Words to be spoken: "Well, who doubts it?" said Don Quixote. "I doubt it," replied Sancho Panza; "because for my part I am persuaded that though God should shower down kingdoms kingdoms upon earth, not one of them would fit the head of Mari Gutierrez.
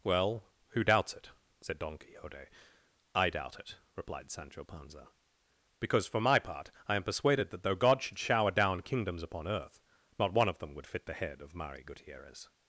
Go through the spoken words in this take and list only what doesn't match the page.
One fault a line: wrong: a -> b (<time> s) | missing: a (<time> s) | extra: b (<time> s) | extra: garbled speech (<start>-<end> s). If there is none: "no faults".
missing: kingdoms (9.2 s)